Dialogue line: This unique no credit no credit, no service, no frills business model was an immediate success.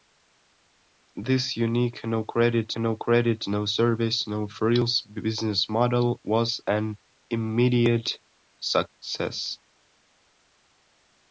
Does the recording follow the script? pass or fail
pass